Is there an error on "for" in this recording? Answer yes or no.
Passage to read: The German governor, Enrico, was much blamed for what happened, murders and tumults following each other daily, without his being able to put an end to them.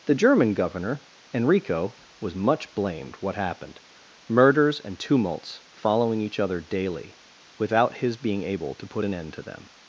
yes